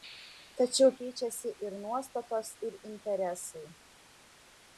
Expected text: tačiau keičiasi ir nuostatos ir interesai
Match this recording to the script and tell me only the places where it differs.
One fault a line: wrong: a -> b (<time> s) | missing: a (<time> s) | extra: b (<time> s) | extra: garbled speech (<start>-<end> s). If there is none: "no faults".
no faults